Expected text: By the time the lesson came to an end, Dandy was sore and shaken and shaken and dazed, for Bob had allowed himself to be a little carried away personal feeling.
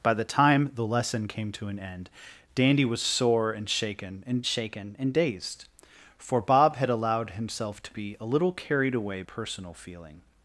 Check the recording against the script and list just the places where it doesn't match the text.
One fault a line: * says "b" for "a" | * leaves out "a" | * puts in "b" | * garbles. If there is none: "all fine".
all fine